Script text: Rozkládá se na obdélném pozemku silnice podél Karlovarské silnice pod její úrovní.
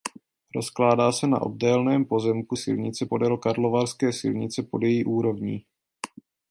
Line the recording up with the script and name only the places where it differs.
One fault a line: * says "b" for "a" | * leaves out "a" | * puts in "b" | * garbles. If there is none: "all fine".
all fine